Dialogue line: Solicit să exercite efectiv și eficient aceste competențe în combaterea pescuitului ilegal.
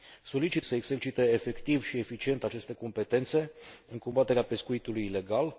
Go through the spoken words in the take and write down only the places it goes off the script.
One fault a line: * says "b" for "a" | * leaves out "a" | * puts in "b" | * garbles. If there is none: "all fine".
all fine